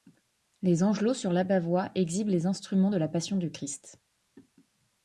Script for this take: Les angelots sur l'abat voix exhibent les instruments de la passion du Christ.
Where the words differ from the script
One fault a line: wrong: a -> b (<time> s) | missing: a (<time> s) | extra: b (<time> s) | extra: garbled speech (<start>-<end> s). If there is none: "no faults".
no faults